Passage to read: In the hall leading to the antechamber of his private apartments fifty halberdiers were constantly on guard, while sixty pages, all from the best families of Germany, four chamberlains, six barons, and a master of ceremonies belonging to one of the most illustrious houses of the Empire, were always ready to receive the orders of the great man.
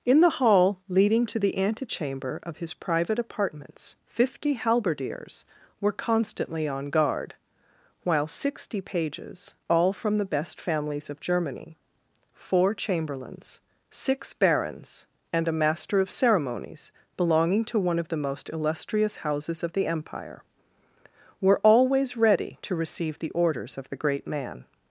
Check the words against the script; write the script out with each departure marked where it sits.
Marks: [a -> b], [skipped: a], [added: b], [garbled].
In the hall leading to the antechamber of his private apartments fifty halberdiers were constantly on guard, while sixty pages, all from the best families of Germany, four chamberlains, six barons, and a master of ceremonies belonging to one of the most illustrious houses of the Empire, were always ready to receive the orders of the great man.